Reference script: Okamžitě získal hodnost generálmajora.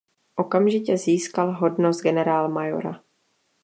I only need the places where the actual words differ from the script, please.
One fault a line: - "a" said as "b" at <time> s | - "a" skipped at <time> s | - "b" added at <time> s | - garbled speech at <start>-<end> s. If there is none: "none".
none